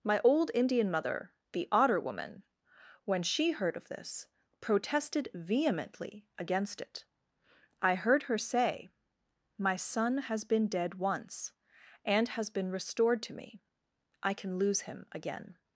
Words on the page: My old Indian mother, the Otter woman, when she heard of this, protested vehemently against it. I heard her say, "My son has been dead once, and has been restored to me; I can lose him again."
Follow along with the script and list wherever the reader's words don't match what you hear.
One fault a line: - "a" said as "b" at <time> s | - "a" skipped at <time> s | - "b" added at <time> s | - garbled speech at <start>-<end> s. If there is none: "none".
none